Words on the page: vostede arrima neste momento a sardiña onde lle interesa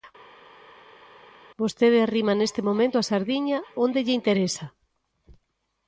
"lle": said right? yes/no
yes